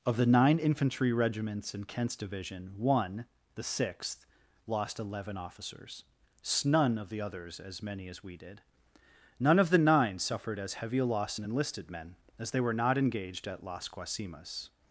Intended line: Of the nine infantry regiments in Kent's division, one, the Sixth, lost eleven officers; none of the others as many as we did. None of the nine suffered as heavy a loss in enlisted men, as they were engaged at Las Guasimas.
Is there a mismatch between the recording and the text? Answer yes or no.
yes